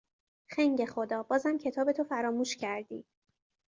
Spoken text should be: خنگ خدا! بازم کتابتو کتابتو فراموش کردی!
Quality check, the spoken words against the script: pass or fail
fail